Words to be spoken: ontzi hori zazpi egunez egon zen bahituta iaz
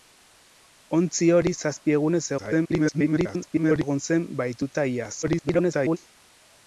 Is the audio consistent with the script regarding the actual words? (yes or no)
no